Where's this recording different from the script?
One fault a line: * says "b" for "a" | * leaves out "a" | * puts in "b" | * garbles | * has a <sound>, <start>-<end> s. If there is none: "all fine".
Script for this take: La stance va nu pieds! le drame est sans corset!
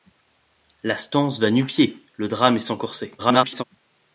* garbles